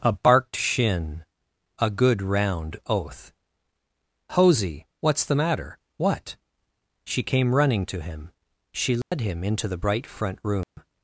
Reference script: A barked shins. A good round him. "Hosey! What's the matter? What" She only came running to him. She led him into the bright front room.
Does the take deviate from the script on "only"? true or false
true